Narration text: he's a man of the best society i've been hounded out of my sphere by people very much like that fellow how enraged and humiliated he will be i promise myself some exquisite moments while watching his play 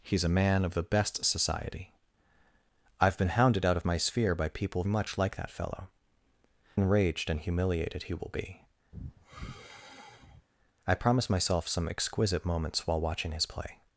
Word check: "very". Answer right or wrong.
wrong